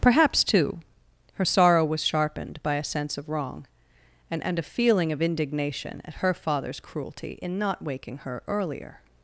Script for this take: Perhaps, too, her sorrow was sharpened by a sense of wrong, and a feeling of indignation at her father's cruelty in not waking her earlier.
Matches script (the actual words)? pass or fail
fail